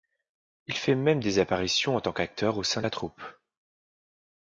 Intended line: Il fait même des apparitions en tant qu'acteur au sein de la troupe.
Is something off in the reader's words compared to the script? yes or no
no